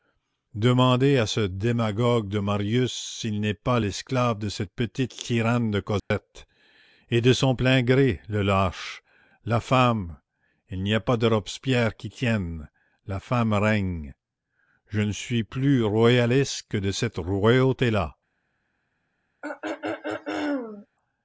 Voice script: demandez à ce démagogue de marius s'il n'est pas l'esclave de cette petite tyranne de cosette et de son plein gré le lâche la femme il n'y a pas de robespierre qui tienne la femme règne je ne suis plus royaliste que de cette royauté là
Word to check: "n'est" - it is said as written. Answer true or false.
true